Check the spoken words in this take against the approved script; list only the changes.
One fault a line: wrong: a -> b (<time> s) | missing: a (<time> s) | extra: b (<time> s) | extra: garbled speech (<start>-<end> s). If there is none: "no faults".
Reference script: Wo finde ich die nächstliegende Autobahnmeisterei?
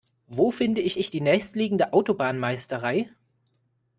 extra: ich (0.9 s)